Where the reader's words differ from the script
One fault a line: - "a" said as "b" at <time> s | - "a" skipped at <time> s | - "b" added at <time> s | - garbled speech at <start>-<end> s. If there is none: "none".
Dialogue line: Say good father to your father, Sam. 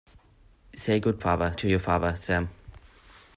none